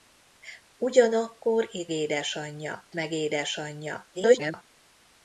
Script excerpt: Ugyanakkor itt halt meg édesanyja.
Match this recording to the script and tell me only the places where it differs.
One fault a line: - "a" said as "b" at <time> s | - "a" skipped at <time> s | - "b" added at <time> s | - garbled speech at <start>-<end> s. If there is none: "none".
- "halt" said as "édesanyja" at 1.9 s
- garbled speech at 4.1-4.6 s